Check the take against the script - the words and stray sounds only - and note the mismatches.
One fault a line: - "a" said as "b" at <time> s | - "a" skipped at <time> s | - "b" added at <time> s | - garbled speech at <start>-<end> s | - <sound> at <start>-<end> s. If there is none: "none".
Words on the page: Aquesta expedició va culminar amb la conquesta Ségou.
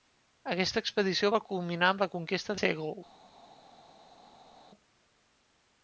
none